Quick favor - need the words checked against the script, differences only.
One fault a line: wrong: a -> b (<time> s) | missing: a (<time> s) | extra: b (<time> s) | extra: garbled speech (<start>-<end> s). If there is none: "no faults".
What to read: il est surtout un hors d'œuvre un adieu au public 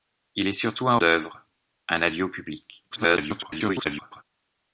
missing: hors (0.9 s)
extra: garbled speech (2.9-4.2 s)